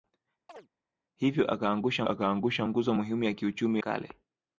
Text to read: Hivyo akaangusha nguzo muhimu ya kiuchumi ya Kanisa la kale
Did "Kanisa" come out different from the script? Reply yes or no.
yes